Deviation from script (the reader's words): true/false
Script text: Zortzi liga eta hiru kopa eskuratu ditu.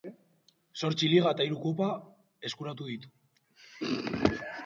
false